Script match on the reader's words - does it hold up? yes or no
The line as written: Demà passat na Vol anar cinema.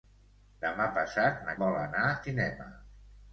yes